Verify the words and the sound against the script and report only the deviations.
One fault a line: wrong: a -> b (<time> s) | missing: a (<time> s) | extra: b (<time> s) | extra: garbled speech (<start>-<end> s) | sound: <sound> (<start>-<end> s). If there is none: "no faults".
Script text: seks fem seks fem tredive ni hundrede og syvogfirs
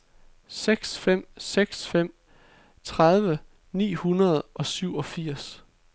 no faults